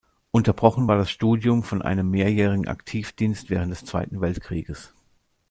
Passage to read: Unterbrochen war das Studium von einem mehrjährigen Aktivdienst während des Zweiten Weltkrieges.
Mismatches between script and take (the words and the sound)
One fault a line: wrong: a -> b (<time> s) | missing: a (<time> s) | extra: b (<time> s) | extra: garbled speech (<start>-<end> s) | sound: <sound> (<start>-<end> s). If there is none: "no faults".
no faults